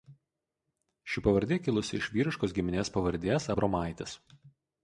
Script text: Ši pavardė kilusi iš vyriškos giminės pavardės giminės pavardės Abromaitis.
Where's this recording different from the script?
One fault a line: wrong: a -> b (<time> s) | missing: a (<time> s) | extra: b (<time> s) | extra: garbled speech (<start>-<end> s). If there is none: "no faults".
missing: giminės pavardės (3.5 s)